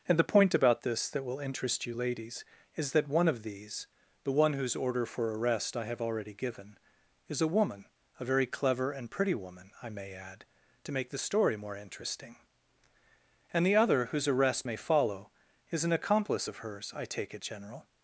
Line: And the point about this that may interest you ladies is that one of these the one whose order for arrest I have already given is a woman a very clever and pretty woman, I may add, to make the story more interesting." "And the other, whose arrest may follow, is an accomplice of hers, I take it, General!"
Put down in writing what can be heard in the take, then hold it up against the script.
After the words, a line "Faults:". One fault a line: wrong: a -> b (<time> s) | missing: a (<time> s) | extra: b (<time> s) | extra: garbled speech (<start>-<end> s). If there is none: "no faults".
And the point about this that will interest you ladies is that one of these the one whose order for arrest I have already given is a woman a very clever and pretty woman, I may add, to make the story more interesting." "And the other, whose arrest may follow, is an accomplice of hers, I take it, General!"
Faults:
wrong: may -> will (1.2 s)